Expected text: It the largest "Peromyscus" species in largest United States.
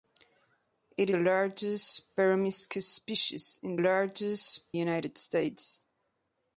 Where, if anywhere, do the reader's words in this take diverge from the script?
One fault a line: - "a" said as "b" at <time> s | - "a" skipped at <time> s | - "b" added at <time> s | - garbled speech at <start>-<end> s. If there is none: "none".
none